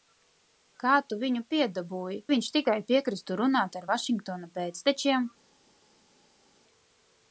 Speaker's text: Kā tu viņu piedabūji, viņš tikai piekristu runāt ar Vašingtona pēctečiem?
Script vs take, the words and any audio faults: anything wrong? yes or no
no